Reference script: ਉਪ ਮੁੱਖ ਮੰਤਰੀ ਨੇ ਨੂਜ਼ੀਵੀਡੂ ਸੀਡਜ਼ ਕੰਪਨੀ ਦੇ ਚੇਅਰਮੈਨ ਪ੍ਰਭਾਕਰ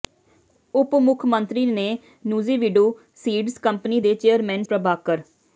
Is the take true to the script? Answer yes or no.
yes